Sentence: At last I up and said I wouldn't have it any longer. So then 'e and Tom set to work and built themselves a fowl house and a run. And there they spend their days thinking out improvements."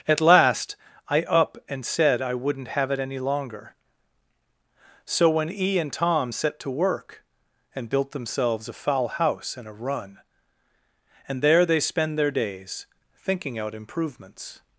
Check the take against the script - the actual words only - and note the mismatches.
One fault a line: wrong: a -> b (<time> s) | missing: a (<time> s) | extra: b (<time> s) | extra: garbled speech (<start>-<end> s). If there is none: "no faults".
wrong: then -> when (5.3 s)